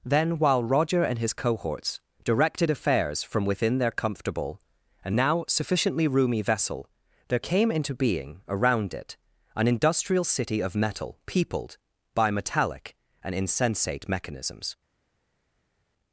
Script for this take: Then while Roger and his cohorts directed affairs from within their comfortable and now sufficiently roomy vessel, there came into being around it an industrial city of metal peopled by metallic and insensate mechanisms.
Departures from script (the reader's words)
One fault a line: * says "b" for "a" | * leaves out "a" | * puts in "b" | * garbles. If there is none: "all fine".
all fine